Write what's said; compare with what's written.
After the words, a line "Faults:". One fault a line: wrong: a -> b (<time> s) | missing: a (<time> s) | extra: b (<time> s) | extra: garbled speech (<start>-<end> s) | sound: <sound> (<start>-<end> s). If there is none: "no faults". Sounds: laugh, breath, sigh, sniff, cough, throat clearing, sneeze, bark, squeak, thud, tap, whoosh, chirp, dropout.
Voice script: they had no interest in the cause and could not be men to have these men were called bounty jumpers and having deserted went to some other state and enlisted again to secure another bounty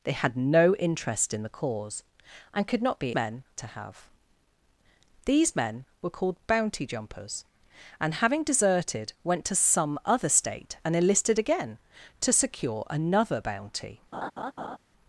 they had no interest in the cause and could not be men to have these men were called bounty jumpers and having deserted went to some other state and enlisted again to secure another bounty
Faults:
sound: laugh (14.1-14.8 s)